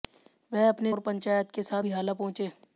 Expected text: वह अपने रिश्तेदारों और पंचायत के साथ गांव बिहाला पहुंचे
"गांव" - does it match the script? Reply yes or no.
no